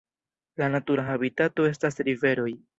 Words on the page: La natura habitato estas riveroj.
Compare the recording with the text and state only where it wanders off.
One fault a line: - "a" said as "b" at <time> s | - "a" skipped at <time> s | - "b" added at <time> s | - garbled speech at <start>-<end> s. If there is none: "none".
none